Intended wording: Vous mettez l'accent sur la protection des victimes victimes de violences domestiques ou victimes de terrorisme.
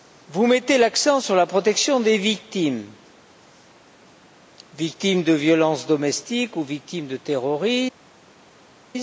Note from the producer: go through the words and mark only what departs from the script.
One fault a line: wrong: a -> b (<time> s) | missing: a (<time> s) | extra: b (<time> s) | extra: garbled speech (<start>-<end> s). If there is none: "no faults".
no faults